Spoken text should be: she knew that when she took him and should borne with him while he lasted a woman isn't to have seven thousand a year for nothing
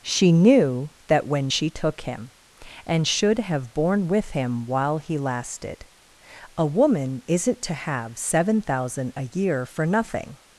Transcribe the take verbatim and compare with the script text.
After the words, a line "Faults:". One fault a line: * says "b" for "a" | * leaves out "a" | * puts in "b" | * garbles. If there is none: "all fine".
she knew that when she took him and should have borne with him while he lasted a woman isn't to have seven thousand a year for nothing
Faults:
* puts in "have"